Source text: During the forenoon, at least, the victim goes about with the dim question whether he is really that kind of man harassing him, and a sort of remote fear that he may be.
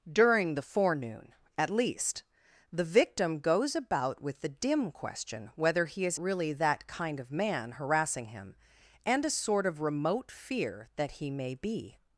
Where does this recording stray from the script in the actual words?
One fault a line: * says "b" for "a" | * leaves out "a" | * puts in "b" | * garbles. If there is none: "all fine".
all fine